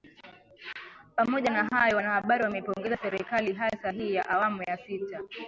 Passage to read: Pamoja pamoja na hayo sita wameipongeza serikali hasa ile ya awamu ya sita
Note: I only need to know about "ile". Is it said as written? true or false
false